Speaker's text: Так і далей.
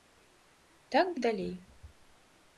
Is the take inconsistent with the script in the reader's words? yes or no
no